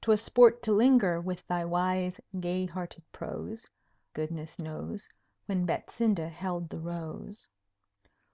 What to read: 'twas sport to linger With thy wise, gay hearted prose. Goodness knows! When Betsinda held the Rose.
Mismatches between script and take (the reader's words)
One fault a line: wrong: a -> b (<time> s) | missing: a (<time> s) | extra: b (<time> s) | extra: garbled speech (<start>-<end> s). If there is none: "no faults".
no faults